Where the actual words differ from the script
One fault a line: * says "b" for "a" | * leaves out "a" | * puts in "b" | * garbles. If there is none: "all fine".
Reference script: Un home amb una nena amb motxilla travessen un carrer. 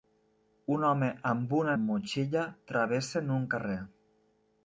* leaves out "nena"